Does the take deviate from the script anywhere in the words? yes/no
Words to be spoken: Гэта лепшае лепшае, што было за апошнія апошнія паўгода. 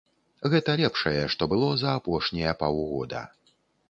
yes